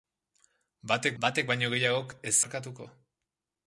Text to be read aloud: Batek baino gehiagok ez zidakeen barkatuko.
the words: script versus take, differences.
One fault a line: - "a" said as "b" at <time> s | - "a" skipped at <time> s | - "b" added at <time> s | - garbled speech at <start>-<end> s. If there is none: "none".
- "batek" added at 1.2 s
- "zidakeen" skipped at 2.3 s